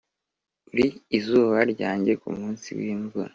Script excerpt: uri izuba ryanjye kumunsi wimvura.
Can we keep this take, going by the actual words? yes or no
yes